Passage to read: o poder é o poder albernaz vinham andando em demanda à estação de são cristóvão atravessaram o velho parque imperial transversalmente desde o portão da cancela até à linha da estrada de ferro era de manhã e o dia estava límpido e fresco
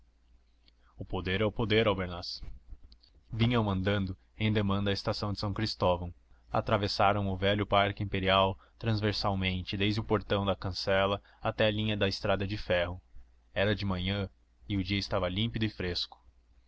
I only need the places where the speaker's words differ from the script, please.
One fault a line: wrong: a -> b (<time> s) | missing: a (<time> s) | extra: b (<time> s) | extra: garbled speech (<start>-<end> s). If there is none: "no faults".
no faults